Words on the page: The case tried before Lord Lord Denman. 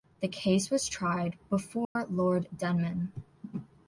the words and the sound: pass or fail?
fail